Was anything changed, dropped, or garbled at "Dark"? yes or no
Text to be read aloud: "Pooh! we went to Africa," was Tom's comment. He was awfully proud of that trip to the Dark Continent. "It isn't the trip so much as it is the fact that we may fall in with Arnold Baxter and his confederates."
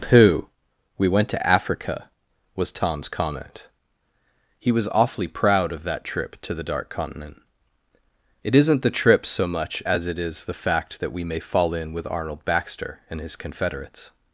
no